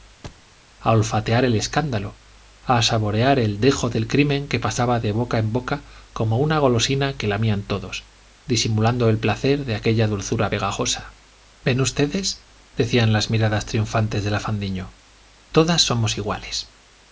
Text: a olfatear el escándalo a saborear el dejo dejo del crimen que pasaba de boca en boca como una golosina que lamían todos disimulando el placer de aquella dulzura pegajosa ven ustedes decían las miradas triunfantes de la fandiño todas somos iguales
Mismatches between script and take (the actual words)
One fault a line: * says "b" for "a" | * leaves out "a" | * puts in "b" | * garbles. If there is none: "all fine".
* leaves out "dejo"